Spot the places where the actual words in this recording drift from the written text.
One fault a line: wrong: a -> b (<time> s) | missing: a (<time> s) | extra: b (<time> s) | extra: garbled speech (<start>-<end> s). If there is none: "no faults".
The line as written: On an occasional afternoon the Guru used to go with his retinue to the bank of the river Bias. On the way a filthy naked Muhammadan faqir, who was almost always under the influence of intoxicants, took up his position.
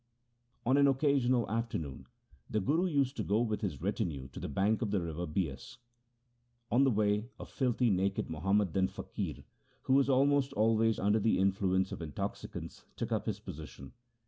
no faults